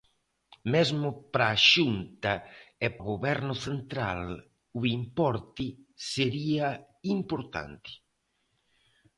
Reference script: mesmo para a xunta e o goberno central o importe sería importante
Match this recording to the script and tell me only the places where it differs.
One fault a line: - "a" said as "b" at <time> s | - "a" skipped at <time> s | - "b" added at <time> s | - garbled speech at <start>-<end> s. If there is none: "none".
none